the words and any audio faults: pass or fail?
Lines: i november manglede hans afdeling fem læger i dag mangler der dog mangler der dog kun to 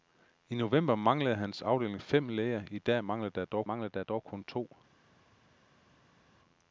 pass